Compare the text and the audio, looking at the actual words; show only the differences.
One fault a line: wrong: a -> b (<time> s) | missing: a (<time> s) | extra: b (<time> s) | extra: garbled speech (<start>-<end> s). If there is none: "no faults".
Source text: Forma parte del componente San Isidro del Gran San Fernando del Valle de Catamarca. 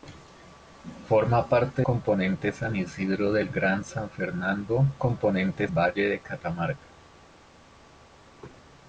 missing: del (1.8 s)
wrong: del -> componente (5.0 s)